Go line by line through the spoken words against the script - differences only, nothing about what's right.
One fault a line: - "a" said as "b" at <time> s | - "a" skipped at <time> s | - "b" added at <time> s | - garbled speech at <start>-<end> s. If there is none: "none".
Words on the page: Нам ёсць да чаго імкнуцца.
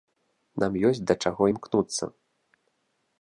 none